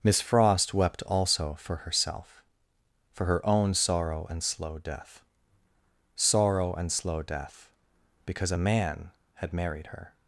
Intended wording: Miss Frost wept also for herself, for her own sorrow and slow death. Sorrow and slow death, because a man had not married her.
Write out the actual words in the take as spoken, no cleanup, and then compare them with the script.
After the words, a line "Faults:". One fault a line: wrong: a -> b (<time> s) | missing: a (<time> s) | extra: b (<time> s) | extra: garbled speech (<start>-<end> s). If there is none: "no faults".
Miss Frost wept also for herself, for her own sorrow and slow death. Sorrow and slow death, because a man had married her.
Faults:
missing: not (9.5 s)